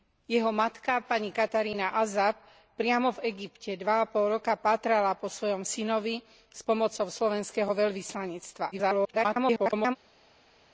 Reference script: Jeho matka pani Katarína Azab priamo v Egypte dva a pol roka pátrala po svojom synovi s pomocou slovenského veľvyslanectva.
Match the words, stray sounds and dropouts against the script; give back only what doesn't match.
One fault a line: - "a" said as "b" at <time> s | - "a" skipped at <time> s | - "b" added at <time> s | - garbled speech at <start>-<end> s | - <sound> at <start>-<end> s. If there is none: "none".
- garbled speech at 8.7-10.0 s